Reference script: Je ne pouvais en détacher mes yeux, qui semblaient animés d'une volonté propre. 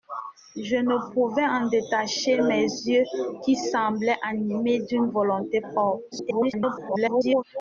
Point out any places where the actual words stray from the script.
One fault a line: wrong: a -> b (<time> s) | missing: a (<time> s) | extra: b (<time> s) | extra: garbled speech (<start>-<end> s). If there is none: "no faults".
extra: garbled speech (6.1-7.4 s)